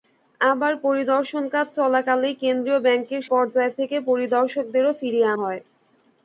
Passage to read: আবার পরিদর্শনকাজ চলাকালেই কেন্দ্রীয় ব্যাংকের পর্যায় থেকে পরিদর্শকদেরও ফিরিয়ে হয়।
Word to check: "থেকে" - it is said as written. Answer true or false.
true